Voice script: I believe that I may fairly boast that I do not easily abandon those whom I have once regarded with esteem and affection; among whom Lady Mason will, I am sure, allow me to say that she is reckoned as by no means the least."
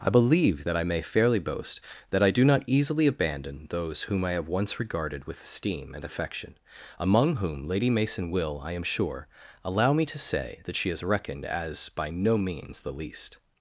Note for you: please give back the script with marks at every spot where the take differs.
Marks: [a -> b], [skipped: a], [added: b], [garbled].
I believe that I may fairly boast that I do not easily abandon those whom I have once regarded with esteem and affection; among whom Lady Mason will, I am sure, allow me to say that she is reckoned as by no means the least."